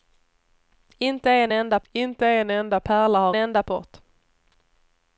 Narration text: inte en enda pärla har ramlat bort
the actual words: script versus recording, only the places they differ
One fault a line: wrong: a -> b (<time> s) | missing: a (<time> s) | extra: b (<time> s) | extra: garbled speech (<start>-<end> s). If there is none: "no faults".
extra: inte en enda (1.9 s)
wrong: ramlat -> enda (3.4 s)